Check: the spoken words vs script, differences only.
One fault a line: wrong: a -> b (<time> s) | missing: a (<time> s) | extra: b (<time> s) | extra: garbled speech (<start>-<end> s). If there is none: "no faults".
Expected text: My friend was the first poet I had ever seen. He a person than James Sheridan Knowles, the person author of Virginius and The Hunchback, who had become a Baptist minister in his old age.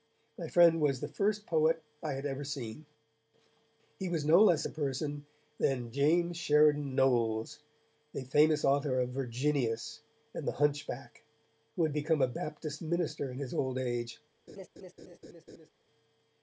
extra: was no less (4.1 s)
wrong: person -> famous (8.2 s)